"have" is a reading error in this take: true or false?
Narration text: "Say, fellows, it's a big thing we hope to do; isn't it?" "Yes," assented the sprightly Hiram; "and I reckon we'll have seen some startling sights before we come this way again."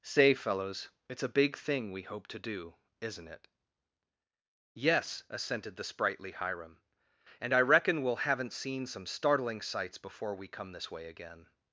true